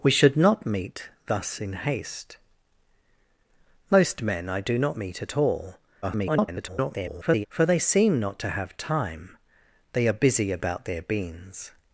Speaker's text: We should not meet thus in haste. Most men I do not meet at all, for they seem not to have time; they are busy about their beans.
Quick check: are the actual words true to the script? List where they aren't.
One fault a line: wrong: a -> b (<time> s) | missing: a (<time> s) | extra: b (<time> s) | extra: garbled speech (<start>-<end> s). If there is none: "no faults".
extra: garbled speech (6.0-7.5 s)